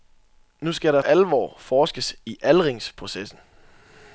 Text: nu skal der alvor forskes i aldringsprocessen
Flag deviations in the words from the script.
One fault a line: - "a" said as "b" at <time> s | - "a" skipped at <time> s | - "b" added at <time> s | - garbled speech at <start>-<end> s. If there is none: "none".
none